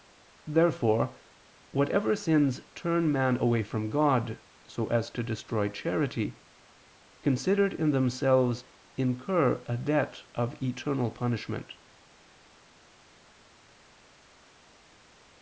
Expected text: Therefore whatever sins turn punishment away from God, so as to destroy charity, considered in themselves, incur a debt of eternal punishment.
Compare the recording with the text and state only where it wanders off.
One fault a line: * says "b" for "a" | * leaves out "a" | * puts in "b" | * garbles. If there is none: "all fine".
* says "man" for "punishment"